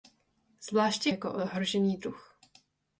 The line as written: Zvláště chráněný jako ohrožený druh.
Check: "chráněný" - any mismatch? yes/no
yes